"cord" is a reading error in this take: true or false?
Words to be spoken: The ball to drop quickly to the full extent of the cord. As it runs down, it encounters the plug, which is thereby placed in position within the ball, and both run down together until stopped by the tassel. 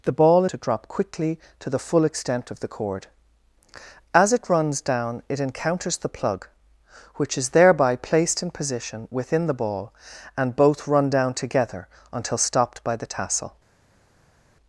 false